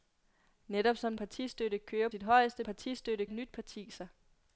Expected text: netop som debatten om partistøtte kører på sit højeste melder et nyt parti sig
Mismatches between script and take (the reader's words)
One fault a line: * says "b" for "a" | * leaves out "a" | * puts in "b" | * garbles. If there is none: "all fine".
* leaves out "debatten om"
* leaves out "på"
* says "partistøtte" for "melder"